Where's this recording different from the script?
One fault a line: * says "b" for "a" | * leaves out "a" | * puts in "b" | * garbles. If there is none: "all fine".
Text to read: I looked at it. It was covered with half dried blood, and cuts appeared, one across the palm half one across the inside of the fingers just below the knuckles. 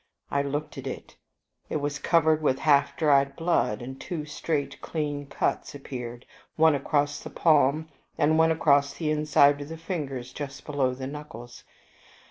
* puts in "two straight clean"
* says "and" for "half"